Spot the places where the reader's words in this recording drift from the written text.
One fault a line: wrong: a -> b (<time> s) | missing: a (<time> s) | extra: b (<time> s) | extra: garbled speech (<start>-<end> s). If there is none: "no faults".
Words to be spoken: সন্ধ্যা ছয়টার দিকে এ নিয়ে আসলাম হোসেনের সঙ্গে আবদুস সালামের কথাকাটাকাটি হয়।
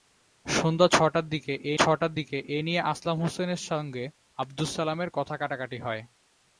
extra: ছয়টার দিকে এ (1.7 s)